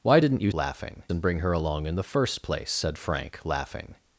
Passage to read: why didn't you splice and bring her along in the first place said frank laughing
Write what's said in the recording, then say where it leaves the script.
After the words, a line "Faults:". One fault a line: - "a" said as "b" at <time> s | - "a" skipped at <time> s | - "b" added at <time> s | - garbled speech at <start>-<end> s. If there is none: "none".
why didn't you laughing and bring her along in the first place said frank laughing
Faults:
- "splice" said as "laughing" at 0.5 s